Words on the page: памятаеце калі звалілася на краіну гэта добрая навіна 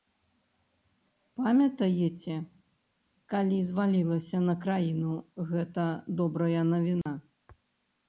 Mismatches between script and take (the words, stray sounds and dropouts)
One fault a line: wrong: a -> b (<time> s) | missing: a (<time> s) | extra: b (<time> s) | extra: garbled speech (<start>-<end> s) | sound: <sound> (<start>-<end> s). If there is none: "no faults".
sound: dropout (7.0-7.1 s)